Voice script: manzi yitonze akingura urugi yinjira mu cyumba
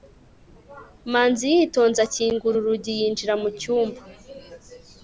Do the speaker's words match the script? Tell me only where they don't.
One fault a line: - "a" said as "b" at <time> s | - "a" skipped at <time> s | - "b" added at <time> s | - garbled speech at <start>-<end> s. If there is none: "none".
none